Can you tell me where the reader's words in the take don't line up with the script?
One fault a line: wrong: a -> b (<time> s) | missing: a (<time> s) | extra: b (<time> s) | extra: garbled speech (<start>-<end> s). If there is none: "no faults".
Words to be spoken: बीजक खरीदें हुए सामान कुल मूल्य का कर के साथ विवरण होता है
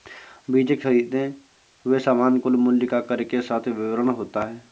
no faults